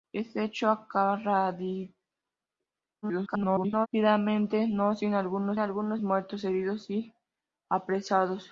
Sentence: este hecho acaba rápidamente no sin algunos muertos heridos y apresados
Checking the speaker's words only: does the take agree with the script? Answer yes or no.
no